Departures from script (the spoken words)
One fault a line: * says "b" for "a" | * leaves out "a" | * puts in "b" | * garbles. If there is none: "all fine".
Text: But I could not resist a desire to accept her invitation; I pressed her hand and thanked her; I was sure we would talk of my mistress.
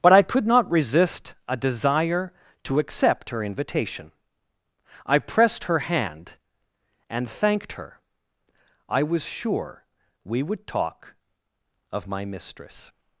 all fine